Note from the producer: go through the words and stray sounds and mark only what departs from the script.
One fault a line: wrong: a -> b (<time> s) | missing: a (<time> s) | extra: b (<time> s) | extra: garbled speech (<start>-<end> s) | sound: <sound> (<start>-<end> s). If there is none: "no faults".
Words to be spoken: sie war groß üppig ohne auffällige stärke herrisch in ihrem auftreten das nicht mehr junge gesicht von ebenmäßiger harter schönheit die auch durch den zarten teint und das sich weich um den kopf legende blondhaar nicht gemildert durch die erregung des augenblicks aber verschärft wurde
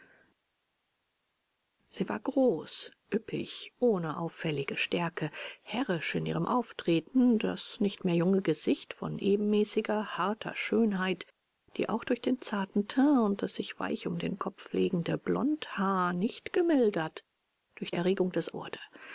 missing: die (17.9 s)
missing: augenblicks aber verschärft (18.5 s)